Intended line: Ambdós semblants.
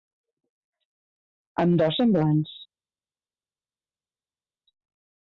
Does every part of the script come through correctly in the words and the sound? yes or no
yes